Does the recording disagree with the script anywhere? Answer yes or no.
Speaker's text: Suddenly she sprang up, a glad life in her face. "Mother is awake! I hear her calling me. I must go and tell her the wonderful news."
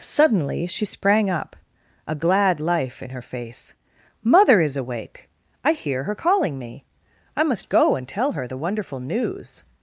no